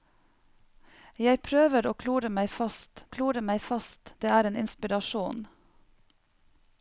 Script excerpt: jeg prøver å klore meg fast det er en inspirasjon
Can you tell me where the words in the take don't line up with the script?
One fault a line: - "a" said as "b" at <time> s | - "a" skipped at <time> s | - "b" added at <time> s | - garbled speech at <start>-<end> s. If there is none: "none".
- "klore meg fast" added at 3.2 s